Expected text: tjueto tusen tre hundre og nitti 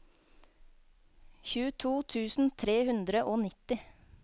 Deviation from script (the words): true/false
false